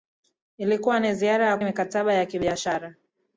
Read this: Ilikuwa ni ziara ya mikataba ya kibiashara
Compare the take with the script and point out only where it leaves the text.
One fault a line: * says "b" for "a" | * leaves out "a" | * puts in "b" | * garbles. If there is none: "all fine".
all fine